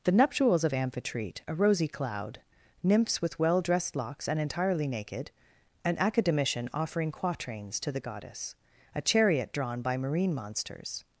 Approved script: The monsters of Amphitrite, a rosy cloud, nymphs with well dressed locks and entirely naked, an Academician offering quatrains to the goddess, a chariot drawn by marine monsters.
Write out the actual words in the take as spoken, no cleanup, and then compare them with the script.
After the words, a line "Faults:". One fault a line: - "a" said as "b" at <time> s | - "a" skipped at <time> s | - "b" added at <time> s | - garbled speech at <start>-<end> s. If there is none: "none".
The nuptials of Amphitrite, a rosy cloud, nymphs with well dressed locks and entirely naked, an Academician offering quatrains to the goddess, a chariot drawn by marine monsters.
Faults:
- "monsters" said as "nuptials" at 0.1 s